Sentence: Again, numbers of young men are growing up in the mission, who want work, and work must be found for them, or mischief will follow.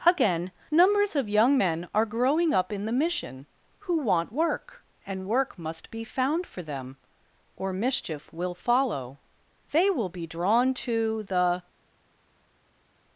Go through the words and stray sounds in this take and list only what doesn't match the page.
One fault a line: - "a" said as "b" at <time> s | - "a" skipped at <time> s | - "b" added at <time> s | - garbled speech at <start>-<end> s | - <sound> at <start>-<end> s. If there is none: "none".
- "They will be drawn to the" added at 9.7 s